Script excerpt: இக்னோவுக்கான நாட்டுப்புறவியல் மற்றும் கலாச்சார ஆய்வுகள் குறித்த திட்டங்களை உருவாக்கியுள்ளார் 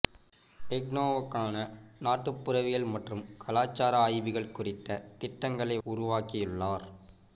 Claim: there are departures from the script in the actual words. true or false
false